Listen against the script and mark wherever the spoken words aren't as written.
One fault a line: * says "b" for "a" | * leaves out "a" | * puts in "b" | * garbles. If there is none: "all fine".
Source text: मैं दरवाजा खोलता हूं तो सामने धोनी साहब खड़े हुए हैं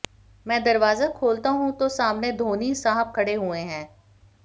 all fine